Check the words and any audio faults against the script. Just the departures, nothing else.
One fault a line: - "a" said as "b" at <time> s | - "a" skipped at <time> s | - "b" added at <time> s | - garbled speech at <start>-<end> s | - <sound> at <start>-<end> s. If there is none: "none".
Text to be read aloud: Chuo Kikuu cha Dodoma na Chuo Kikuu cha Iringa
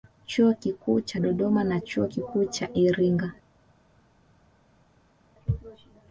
none